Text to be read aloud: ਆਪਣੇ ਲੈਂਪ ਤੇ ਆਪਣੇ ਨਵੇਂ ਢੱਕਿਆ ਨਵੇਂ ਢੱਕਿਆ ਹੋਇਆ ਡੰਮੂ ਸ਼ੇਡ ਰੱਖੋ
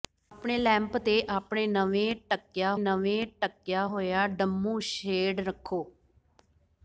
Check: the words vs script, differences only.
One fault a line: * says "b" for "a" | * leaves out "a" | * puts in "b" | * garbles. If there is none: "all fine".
all fine